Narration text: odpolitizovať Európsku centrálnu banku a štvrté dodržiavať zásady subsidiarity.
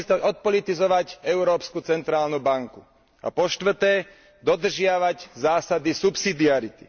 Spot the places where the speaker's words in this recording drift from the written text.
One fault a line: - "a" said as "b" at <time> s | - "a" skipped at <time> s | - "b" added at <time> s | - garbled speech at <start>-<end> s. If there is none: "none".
- "po" added at 3.3 s